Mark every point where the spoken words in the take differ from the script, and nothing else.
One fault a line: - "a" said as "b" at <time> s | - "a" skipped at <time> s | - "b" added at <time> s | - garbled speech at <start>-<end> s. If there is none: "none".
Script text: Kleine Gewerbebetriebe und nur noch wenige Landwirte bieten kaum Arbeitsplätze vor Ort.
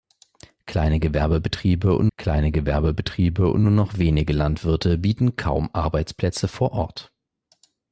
- "kleine Gewerbebetriebe und" added at 2.2 s